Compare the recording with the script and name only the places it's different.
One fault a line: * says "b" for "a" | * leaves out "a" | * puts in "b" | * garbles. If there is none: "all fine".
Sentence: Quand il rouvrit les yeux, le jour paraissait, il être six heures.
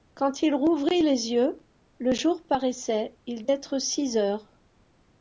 all fine